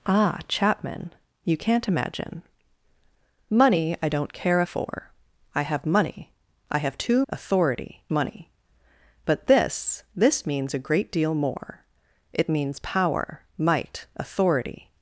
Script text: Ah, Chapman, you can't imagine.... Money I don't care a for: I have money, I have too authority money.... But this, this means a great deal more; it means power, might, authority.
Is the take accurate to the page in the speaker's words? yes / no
yes